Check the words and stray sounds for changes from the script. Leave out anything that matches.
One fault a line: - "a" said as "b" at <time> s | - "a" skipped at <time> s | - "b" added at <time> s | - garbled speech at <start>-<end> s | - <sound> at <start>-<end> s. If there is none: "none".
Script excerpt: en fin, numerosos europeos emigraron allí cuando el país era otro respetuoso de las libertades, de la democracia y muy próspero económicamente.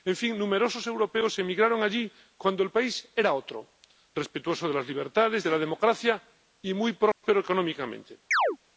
- dropout at 7.1-7.2 s
- chirp at 8.3-8.6 s